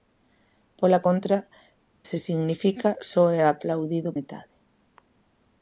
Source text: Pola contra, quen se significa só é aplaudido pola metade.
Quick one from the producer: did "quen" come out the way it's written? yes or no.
no